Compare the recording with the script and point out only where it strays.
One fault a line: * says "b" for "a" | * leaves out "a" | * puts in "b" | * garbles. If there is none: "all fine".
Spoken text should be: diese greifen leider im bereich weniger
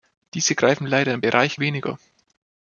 all fine